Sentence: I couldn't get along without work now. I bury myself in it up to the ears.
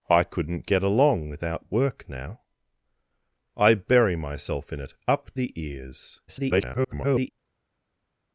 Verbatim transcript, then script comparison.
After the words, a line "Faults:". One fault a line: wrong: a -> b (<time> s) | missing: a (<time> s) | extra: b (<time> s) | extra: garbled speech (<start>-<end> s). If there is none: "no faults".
I couldn't get along without work now. I bury myself in it up the ears. [garbled]
Faults:
missing: to (5.3 s)
extra: garbled speech (6.3-7.3 s)